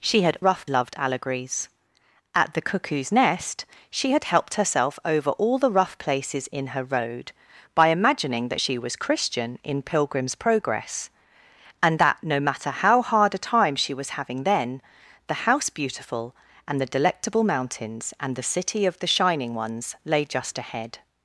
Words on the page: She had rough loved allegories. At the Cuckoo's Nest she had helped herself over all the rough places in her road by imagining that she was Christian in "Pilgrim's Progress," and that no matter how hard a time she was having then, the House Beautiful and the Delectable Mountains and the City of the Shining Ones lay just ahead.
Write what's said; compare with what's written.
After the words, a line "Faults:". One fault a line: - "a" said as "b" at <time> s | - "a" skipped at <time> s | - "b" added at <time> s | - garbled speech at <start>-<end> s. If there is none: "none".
She had rough loved allegories. At the Cuckoo's Nest she had helped herself over all the rough places in her road by imagining that she was Christian in "Pilgrim's Progress," and that no matter how hard a time she was having then, the House Beautiful and the Delectable Mountains and the City of the Shining Ones lay just ahead.
Faults:
none